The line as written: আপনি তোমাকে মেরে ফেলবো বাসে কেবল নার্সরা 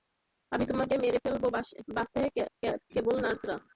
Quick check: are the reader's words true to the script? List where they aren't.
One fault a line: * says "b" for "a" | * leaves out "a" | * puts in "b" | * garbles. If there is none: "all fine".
* says "আমি" for "আপনি"